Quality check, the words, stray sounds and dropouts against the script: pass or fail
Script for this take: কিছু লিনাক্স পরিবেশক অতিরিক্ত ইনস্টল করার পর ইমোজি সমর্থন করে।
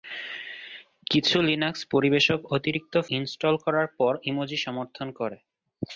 pass